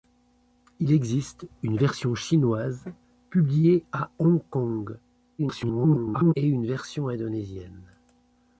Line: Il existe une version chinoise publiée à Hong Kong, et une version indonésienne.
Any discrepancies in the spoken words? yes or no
yes